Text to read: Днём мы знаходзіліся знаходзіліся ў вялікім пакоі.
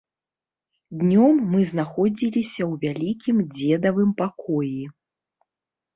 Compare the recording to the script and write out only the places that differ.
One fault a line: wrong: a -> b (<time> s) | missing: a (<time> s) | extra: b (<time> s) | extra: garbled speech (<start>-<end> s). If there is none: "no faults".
missing: знаходзіліся (2.6 s)
extra: дзедавым (3.6 s)